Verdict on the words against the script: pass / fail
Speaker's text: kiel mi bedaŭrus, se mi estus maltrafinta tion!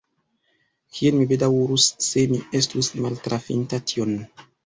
pass